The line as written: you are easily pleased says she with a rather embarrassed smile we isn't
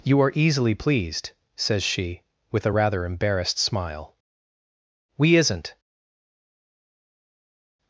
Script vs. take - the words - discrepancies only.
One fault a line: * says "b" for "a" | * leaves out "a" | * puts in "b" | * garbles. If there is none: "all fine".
all fine